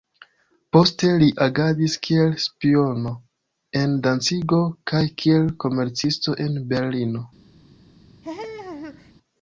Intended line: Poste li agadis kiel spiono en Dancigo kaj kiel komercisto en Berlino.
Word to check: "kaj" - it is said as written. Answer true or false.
true